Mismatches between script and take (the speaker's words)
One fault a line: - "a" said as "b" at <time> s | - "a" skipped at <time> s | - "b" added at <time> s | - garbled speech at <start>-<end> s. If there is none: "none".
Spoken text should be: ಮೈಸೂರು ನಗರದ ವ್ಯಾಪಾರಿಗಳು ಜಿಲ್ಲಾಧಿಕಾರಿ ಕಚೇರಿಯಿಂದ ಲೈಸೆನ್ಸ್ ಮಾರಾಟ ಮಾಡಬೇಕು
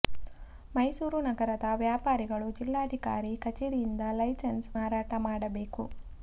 none